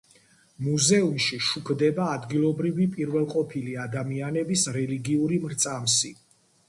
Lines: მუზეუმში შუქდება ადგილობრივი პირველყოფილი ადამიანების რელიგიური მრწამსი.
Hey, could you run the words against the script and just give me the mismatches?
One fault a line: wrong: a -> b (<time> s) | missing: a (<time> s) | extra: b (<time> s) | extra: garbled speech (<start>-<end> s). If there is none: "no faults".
no faults